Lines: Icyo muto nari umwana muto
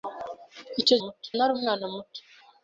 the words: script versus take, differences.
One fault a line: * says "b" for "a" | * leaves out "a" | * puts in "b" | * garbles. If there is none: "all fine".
all fine